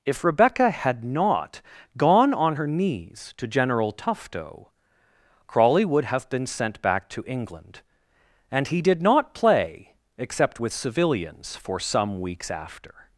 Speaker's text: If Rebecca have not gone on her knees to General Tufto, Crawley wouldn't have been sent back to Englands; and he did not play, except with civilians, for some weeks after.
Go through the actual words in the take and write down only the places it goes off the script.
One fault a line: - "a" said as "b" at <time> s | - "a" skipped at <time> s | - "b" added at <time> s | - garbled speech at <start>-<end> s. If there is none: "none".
- "have" said as "had" at 0.7 s
- "wouldn't" said as "would" at 5.8 s
- "Englands" said as "England" at 7.3 s